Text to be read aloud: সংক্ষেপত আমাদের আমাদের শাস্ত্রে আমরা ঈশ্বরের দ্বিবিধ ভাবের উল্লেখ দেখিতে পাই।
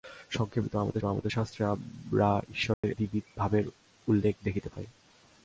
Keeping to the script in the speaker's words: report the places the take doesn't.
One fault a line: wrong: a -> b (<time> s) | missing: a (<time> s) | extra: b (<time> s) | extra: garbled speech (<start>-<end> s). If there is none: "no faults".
no faults